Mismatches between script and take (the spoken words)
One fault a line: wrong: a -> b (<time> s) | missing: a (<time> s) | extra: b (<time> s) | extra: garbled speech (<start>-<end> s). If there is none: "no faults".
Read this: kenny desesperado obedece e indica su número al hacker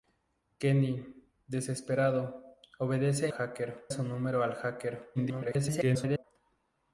wrong: indica -> hacker (3.3 s)
extra: garbled speech (5.1-6.2 s)